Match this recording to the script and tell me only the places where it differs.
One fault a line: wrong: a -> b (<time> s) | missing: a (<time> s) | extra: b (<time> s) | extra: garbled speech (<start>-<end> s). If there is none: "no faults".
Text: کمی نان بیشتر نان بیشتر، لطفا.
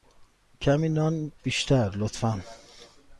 missing: نان بیشتر (1.9 s)